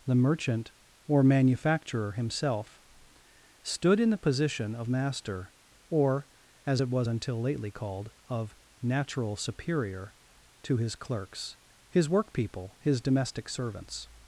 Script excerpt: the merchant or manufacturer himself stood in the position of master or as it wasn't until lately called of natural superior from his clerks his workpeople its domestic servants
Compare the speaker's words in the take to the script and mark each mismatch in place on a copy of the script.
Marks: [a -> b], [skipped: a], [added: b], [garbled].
the merchant or manufacturer himself stood in the position of master or as it [wasn't -> was] until lately called of natural superior [from -> to] his clerks his workpeople [its -> his] domestic servants